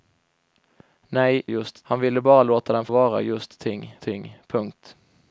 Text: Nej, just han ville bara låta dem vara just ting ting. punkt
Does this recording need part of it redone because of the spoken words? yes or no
no